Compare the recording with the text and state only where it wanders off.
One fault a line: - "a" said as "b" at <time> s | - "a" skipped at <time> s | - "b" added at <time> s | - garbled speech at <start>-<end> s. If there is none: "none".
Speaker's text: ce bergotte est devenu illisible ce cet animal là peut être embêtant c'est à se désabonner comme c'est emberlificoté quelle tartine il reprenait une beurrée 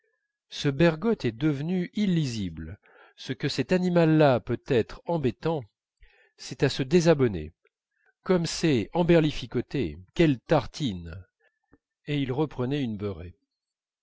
- "que" added at 3.3 s
- "et" added at 12.1 s